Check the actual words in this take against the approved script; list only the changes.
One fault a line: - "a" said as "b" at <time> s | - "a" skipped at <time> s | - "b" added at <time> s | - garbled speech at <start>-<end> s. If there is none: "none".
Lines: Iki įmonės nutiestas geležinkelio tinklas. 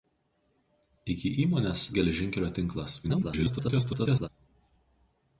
- "nutiestas" skipped at 1.8 s
- garbled speech at 3.0-4.3 s